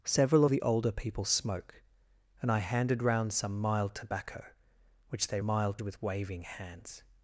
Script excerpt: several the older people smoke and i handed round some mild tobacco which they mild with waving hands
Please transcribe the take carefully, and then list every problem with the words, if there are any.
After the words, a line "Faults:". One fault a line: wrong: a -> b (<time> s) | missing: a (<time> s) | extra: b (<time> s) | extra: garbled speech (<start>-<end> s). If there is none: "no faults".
several the older people smoke and i handed round some mild tobacco which they mild with waving hands
Faults:
no faults